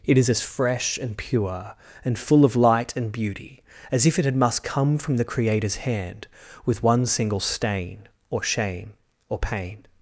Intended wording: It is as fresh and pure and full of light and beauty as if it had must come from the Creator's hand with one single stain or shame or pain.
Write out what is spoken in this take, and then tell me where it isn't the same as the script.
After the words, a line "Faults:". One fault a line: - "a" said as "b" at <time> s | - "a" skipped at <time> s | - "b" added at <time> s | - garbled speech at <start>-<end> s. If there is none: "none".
It is as fresh and pure and full of light and beauty as if it had must come from the Creator's hand with one single stain or shame or pain.
Faults:
none